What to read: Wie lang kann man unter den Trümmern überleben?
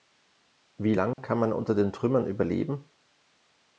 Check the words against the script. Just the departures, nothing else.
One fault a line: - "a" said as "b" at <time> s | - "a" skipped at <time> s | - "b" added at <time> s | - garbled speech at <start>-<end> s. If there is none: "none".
none